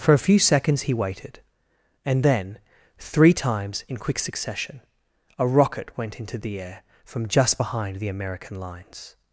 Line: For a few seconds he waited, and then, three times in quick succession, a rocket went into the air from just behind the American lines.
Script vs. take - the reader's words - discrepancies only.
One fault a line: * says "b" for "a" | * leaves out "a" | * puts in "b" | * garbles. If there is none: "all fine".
all fine